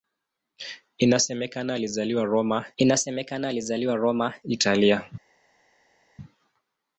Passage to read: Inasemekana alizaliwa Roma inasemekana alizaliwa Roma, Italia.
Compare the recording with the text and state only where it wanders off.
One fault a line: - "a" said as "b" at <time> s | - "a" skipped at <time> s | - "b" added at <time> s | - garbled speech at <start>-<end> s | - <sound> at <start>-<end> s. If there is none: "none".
none